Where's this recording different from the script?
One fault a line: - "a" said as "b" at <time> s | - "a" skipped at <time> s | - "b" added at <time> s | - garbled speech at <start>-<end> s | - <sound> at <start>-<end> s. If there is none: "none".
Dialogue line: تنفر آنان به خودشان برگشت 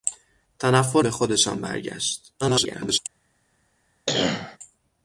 - "آنان" skipped at 1.1 s
- garbled speech at 2.4-3.0 s
- cough at 4.1-4.6 s